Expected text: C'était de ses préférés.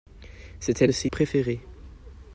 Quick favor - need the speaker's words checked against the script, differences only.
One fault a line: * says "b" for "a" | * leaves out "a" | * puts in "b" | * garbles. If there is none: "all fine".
all fine